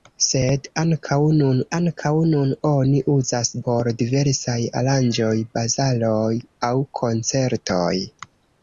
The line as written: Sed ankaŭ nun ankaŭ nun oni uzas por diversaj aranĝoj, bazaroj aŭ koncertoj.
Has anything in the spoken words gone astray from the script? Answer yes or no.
no